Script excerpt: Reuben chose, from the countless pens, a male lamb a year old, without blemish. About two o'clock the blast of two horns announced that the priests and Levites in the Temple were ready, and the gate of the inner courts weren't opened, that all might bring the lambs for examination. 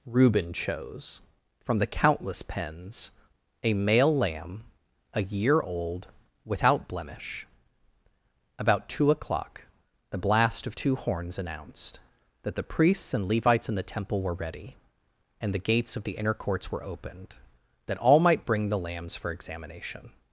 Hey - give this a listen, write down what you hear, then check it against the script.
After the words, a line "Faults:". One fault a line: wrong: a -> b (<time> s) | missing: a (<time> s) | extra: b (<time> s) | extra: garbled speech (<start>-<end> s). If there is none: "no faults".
Reuben chose, from the countless pens, a male lamb a year old, without blemish. About two o'clock the blast of two horns announced that the priests and Levites in the Temple were ready, and the gates of the inner courts were opened, that all might bring the lambs for examination.
Faults:
wrong: gate -> gates (15.6 s)
wrong: weren't -> were (16.7 s)